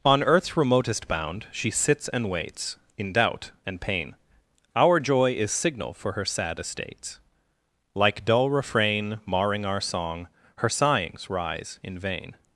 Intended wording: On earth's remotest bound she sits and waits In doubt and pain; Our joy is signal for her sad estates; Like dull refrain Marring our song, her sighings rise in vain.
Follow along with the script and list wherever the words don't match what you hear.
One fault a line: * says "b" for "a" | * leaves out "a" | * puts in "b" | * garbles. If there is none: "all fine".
all fine